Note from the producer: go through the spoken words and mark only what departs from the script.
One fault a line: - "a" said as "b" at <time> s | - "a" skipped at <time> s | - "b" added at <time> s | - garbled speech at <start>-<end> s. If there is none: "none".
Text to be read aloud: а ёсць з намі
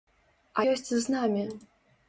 none